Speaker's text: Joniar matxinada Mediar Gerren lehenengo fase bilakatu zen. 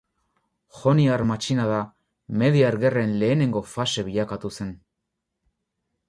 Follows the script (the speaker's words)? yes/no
yes